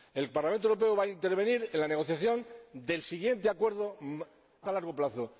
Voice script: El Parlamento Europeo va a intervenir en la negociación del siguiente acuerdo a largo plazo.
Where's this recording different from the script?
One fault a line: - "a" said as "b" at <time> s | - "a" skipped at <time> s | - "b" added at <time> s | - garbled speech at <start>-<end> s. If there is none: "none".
none